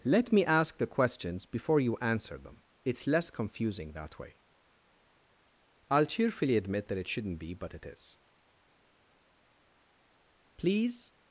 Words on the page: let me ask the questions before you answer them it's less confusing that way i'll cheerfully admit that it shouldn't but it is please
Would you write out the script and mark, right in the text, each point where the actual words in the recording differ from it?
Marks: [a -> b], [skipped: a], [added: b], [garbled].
let me ask the questions before you answer them it's less confusing that way i'll cheerfully admit that it shouldn't [added: be] but it is please